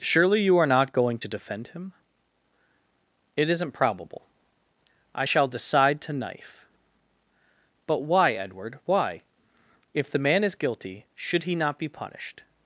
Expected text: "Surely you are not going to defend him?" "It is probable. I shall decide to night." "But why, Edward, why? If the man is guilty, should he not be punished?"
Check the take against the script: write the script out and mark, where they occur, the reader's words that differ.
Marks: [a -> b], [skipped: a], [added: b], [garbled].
"Surely you are not going to defend him?" "It [is -> isn't] probable. I shall decide to [night." -> knife] "But why, Edward, why? If the man is guilty, should he not be punished?"